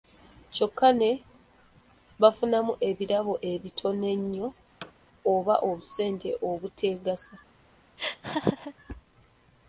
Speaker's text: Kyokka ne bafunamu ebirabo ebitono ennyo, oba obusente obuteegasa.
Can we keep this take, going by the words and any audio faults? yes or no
no